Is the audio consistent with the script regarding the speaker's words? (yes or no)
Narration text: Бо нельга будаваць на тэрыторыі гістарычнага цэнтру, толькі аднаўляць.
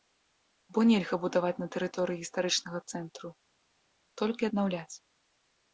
yes